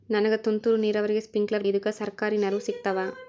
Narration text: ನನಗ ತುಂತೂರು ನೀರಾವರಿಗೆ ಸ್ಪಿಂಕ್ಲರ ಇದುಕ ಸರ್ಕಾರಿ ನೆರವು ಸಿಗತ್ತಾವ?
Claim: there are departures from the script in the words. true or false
false